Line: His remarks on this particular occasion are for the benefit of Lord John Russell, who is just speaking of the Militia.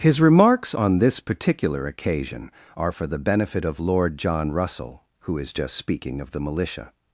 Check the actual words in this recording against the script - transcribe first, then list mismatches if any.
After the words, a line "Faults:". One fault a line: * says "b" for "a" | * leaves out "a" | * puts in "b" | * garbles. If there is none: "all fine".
His remarks on this particular occasion are for the benefit of Lord John Russell, who is just speaking of the Militia.
Faults:
all fine